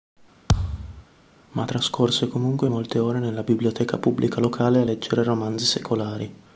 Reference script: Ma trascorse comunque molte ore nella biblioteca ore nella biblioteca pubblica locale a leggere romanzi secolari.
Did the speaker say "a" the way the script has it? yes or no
yes